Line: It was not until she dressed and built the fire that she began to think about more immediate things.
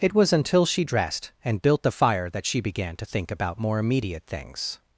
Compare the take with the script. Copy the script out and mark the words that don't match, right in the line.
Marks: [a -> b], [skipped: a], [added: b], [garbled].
It was [skipped: not] until she dressed and built the fire that she began to think about more immediate things.